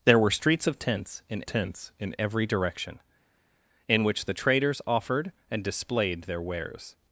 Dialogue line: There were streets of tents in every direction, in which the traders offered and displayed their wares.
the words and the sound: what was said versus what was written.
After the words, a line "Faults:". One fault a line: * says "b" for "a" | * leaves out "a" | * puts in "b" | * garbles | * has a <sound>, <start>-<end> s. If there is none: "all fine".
There were streets of tents in tents in every direction, in which the traders offered and displayed their wares.
Faults:
* puts in "tents in"